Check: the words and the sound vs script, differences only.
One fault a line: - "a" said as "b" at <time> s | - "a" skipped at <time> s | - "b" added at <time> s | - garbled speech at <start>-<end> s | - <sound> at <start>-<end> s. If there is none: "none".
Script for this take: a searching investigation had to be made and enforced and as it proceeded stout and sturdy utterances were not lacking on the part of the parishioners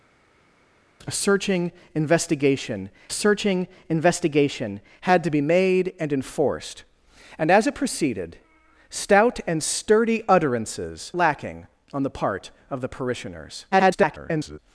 - "searching investigation" added at 3.1 s
- "were not" skipped at 11.1 s
- garbled speech at 13.7-14.6 s